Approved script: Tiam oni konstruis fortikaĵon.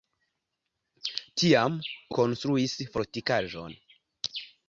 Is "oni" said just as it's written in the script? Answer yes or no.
no